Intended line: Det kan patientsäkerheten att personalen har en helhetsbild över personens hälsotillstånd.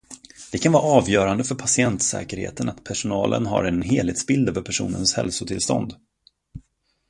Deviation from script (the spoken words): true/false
true